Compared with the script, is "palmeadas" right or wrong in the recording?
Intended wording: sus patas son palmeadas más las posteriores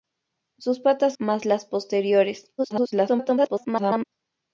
wrong